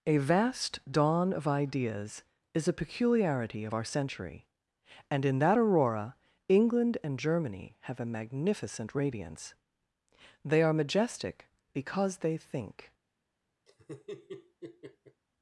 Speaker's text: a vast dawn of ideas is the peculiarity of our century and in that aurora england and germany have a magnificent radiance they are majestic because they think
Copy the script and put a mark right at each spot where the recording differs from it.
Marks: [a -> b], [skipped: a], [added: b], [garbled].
a vast dawn of ideas is [the -> a] peculiarity of our century and in that aurora england and germany have a magnificent radiance they are majestic because they think